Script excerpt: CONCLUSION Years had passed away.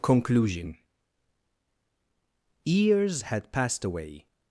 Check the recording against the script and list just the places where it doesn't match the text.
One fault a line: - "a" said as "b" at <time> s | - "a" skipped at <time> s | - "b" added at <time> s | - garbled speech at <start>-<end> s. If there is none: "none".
none